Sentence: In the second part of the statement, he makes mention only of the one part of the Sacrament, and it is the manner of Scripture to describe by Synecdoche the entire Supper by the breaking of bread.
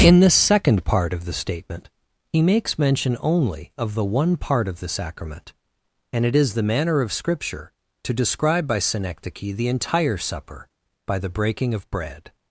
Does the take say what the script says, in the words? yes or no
yes